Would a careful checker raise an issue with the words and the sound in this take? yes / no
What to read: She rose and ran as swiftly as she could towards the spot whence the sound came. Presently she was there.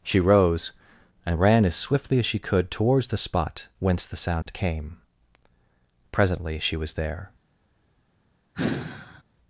yes